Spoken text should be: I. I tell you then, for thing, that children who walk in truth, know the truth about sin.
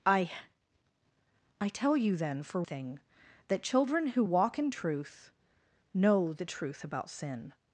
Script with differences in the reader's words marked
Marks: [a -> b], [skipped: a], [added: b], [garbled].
I. I tell you then, for thing, that children who walk in truth, know the truth about sin.